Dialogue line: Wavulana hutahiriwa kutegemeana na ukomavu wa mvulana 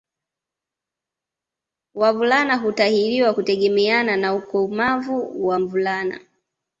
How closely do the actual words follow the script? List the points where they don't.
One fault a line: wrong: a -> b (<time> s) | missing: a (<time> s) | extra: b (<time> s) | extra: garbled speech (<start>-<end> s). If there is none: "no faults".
no faults